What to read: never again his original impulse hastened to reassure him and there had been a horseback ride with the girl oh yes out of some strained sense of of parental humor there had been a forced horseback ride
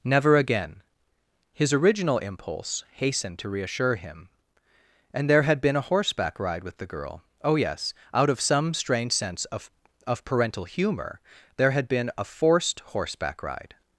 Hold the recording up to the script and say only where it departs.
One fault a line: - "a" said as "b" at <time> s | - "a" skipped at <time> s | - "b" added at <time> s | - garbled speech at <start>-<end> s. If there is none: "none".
- "strained" said as "strange" at 8.7 s